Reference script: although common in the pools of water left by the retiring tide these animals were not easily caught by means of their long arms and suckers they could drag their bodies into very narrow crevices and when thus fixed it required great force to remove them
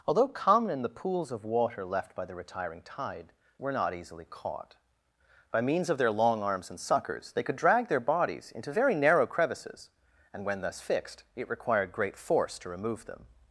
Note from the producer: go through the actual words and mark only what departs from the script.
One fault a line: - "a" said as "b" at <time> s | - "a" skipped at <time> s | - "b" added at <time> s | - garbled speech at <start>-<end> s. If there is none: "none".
- "these animals" skipped at 3.3 s